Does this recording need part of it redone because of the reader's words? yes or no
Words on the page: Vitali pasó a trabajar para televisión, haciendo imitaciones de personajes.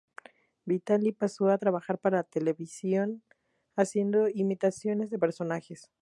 no